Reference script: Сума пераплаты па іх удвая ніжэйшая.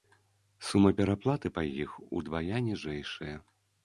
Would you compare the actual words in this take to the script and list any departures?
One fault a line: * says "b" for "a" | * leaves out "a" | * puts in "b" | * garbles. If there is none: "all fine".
all fine